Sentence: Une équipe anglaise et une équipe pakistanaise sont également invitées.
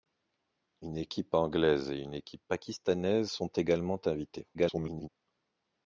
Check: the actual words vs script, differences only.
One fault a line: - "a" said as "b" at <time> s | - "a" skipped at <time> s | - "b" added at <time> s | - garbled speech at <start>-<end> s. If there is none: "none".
- garbled speech at 4.5-5.1 s